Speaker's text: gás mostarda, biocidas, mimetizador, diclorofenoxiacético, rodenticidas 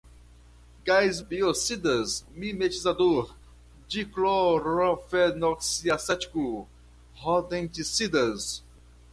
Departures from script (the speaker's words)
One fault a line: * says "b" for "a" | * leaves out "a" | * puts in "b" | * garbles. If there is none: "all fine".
* leaves out "mostarda"